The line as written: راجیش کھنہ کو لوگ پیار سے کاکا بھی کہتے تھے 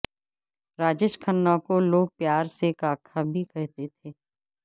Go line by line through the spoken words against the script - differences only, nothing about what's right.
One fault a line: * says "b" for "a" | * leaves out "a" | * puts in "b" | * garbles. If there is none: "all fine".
all fine